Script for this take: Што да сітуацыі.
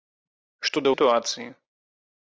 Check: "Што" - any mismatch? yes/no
no